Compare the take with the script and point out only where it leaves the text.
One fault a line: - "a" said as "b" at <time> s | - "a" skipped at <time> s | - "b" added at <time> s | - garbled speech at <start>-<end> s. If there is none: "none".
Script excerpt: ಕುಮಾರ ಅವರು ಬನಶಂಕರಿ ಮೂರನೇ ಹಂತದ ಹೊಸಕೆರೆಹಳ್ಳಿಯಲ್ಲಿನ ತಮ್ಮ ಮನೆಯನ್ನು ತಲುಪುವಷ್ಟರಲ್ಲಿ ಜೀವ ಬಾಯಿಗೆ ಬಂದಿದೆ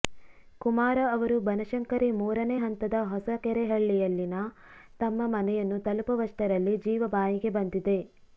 none